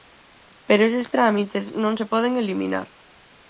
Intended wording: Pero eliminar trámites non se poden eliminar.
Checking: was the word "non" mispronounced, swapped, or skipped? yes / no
no